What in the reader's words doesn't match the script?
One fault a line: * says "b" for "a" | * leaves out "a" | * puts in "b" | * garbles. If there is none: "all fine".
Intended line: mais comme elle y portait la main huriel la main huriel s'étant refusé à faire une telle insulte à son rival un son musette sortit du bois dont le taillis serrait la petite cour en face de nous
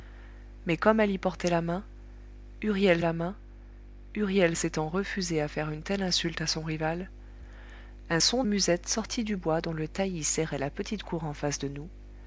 all fine